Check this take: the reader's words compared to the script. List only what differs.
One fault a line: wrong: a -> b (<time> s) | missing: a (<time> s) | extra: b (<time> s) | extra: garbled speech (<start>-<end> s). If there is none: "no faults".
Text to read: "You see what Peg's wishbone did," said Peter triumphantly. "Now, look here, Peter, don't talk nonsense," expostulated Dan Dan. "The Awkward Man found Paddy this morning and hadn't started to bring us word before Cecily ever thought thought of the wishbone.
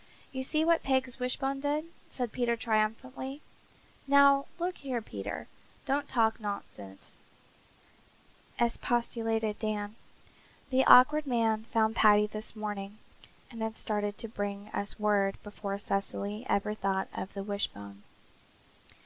missing: Dan (9.9 s)
wrong: hadn't -> had (13.6 s)
missing: thought (17.1 s)